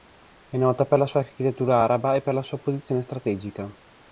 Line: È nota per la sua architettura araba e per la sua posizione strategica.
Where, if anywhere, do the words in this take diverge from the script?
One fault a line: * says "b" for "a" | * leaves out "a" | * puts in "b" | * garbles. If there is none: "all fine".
all fine